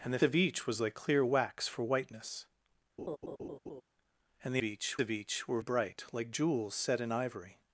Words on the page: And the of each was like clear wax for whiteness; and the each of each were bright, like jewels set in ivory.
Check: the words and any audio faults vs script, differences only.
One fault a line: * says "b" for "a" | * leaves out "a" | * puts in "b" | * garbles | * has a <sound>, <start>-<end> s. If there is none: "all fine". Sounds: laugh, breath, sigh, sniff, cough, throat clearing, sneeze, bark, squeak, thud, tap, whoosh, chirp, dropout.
* has a laugh, 3.0-3.8 s